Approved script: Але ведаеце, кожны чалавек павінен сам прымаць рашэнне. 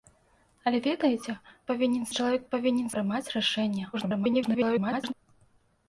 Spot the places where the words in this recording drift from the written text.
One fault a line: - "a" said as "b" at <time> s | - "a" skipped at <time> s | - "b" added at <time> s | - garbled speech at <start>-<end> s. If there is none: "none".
- "кожны" said as "павінен" at 1.7 s
- "сам" skipped at 2.9 s
- garbled speech at 3.9-5.1 s